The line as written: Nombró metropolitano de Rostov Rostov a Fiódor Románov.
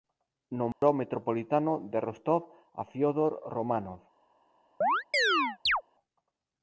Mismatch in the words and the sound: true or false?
true